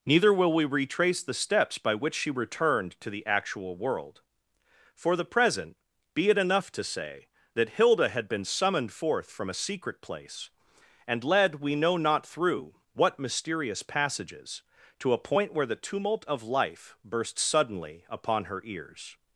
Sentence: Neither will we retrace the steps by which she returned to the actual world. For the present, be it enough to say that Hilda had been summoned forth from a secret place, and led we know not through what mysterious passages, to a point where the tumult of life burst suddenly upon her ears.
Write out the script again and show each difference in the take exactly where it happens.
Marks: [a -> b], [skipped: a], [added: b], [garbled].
Neither will we retrace the steps by which she returned to the actual world. For the present, be it enough to say that Hilda had been summoned forth from a secret place, and led we know not through what mysterious passages, to a point where the tumult of life burst suddenly upon her ears.